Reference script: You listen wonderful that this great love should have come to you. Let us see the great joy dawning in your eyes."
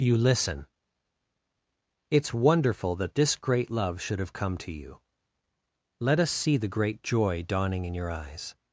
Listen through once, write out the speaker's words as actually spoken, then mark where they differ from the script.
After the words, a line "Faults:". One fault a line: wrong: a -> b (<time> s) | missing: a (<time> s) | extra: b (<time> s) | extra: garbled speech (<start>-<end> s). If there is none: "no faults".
You listen it's wonderful that this great love should have come to you. Let us see the great joy dawning in your eyes."
Faults:
extra: it's (2.1 s)